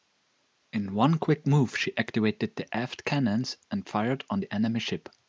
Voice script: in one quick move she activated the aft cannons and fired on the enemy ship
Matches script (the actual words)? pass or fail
pass